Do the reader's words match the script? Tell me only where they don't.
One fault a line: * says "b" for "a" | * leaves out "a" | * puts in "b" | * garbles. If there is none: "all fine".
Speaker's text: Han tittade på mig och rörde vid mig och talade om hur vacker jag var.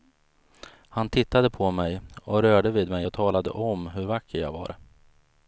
all fine